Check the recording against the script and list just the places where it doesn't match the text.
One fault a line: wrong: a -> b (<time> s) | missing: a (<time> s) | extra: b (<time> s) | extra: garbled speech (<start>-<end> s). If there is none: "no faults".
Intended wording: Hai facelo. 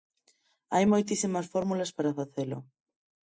extra: moitísimas fórmulas para (0.9 s)